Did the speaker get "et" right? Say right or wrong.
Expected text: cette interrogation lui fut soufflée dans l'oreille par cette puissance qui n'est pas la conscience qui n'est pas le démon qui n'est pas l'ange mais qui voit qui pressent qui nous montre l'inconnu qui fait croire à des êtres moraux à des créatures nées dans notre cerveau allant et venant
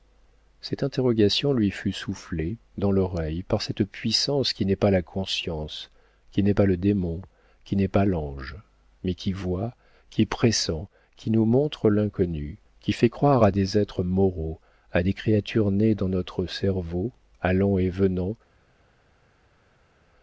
right